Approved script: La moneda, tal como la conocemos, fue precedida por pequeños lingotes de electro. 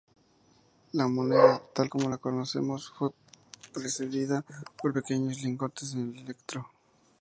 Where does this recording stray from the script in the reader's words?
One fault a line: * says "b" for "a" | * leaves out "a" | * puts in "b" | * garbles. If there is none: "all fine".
all fine